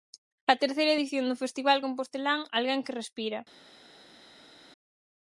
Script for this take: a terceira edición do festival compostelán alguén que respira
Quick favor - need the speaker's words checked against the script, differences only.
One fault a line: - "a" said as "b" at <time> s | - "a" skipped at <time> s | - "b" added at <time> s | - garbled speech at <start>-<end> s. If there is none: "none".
none